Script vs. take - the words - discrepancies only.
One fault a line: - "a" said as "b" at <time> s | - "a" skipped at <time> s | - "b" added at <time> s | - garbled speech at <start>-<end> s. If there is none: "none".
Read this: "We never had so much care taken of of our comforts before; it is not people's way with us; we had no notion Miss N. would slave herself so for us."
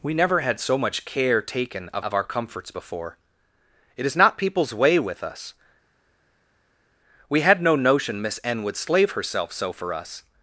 none